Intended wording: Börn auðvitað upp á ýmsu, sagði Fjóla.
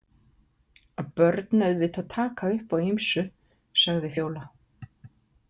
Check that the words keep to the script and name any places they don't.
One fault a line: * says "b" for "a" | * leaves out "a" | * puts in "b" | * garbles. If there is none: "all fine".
* puts in "taka"